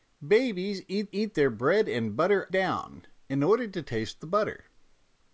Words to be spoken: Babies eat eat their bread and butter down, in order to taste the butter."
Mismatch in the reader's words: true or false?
false